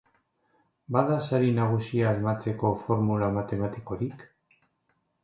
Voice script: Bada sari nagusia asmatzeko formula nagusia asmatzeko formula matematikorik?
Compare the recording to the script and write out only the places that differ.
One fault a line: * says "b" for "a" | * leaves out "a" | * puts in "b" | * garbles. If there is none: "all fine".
* leaves out "nagusia asmatzeko formula"